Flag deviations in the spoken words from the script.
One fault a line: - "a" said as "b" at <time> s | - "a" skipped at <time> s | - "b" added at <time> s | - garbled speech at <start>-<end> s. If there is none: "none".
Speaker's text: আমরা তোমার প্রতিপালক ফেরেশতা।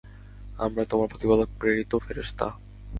- "প্রেরিত" added at 1.6 s